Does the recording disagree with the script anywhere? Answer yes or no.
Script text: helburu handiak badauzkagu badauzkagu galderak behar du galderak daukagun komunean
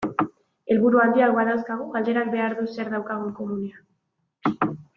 yes